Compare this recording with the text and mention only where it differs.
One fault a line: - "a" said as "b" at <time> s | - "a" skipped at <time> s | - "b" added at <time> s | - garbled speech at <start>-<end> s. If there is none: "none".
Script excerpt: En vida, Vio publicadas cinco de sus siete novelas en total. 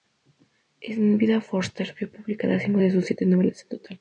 - "Forster" added at 1.5 s